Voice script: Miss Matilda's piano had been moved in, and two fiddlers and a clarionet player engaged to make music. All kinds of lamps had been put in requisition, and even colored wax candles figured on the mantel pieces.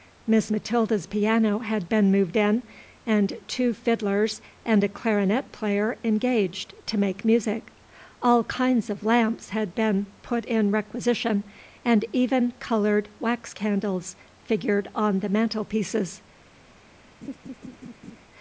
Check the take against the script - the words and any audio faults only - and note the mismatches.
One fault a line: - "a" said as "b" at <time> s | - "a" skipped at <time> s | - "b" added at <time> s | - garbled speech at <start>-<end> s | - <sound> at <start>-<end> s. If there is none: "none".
- laugh at 17.2-18.2 s